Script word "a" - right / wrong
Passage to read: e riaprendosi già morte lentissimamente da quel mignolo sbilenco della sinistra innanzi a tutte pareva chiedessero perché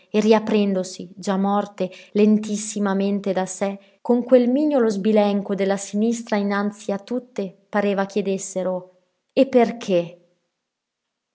right